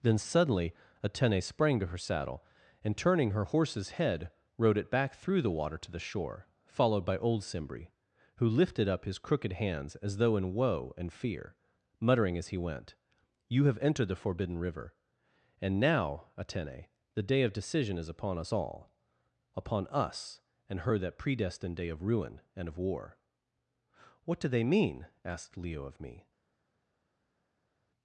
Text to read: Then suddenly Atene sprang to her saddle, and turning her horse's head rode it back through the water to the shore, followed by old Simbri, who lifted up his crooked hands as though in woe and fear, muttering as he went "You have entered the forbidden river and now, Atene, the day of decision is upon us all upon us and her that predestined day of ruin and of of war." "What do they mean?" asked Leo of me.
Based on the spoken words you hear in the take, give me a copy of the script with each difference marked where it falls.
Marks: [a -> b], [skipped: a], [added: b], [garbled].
Then suddenly Atene sprang to her saddle, and turning her horse's head rode it back through the water to the shore, followed by old Simbri, who lifted up his crooked hands as though in woe and fear, muttering as he went "You have entered the forbidden river and now, Atene, the day of decision is upon us all upon us and her that predestined day of ruin and of [skipped: of] war." "What do they mean?" asked Leo of me.